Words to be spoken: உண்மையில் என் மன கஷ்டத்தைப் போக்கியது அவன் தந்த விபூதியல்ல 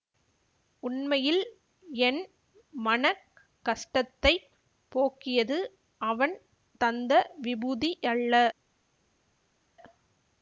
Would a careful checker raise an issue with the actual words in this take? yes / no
no